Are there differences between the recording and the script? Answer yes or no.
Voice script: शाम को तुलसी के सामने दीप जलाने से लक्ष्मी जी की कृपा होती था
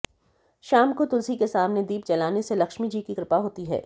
yes